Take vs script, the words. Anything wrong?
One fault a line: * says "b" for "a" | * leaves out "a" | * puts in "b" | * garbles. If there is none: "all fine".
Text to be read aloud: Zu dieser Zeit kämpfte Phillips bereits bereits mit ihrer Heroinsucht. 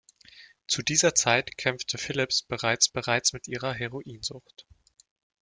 all fine